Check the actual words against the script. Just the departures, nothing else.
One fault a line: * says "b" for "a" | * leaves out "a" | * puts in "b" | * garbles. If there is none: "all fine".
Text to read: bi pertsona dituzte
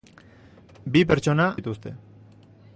all fine